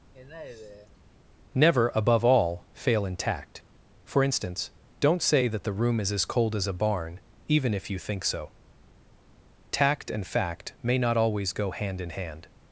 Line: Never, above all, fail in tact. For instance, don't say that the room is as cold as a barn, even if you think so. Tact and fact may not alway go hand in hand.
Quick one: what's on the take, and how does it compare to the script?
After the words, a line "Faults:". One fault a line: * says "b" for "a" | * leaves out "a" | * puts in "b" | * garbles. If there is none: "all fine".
Never, above all, fail in tact. For instance, don't say that the room is as cold as a barn, even if you think so. Tact and fact may not always go hand in hand.
Faults:
* says "always" for "alway"